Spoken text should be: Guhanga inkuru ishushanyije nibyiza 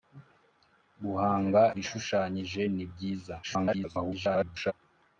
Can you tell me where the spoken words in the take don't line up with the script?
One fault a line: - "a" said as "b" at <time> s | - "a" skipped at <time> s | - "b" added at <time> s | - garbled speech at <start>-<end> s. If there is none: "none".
- "inkuru" skipped at 1.6 s
- garbled speech at 3.4-4.7 s